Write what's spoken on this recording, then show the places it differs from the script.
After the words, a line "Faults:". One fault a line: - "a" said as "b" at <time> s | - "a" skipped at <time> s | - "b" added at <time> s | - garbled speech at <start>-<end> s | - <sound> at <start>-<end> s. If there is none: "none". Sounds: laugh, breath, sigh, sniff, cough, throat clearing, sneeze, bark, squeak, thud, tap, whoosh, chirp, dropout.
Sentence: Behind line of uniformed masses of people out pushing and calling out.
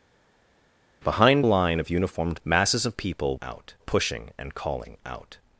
Behind line of uniformed masses of people out pushing and calling out.
Faults:
none